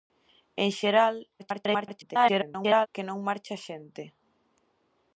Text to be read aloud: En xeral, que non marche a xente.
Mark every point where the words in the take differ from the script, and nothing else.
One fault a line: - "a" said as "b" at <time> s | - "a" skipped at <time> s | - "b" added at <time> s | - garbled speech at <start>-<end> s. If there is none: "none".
- garbled speech at 1.4-2.9 s